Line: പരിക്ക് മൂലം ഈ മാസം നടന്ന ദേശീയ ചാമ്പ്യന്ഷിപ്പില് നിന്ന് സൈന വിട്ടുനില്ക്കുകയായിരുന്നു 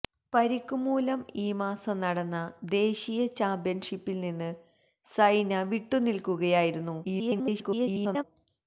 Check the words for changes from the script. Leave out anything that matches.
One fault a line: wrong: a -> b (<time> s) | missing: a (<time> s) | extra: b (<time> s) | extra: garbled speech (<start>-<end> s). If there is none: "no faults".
extra: garbled speech (7.0-8.2 s)